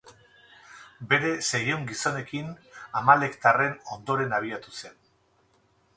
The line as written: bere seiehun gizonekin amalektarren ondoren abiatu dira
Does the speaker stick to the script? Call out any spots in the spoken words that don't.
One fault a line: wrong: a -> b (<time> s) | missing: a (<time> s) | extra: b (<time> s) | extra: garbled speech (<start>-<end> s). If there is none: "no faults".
wrong: dira -> zen (4.8 s)